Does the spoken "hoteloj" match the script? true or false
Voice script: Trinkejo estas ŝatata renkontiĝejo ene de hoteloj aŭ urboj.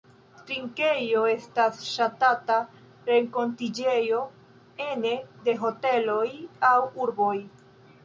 true